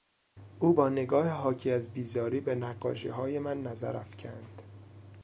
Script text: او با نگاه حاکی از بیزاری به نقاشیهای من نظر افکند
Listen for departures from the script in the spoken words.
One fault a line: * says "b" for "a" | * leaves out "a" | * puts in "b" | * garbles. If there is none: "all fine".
all fine